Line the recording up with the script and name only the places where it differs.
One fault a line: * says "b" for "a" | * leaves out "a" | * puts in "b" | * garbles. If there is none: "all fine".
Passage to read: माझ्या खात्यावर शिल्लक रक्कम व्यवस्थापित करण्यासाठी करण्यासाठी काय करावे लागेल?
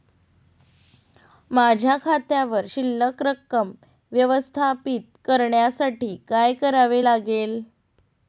* leaves out "करण्यासाठी"